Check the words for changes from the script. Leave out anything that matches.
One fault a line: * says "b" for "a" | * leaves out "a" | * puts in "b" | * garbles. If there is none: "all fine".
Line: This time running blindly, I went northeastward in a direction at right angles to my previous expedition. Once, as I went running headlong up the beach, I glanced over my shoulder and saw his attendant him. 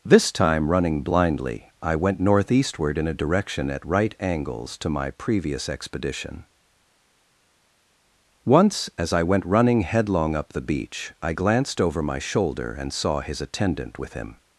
* puts in "with"